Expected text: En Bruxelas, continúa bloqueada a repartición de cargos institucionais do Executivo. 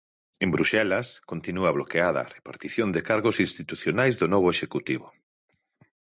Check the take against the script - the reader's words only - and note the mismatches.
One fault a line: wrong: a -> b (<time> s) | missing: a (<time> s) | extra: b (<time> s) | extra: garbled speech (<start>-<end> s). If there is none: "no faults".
extra: novo (4.3 s)